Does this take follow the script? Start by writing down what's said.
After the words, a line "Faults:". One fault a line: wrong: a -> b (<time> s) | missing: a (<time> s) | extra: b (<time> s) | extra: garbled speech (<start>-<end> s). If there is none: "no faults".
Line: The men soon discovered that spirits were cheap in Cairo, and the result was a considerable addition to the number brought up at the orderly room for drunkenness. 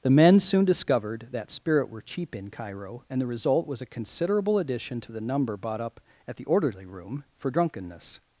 The men soon discovered that spirit were cheap in Cairo, and the result was a considerable addition to the number bought up at the orderly room for drunkenness.
Faults:
wrong: spirits -> spirit (1.5 s)
wrong: brought -> bought (5.6 s)